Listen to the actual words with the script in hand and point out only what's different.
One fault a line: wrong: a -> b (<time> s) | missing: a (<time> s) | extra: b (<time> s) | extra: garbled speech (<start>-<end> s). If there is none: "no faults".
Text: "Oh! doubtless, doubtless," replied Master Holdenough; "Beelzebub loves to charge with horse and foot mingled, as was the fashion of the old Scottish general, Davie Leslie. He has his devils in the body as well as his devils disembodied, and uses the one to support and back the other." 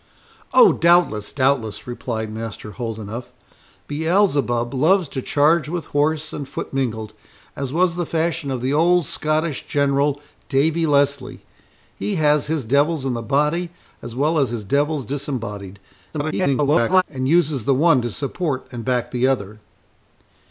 extra: garbled speech (16.1-17.0 s)